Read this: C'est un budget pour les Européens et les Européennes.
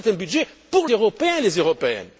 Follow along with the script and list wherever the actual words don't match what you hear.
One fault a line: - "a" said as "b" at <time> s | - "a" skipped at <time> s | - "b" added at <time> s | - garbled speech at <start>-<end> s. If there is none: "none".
- "les" skipped at 0.9 s